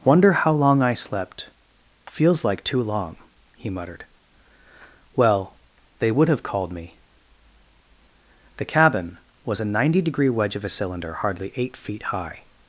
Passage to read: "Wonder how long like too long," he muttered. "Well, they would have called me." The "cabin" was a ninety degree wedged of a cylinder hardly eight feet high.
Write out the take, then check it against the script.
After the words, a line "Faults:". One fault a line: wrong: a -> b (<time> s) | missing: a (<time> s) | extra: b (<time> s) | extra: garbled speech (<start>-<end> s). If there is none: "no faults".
"Wonder how long I slept... feels like too long," he muttered. "Well, they would have called me." The "cabin" was a ninety degree wedge of a cylinder hardly eight feet high.
Faults:
extra: I slept feels (0.8 s)
wrong: wedged -> wedge (10.3 s)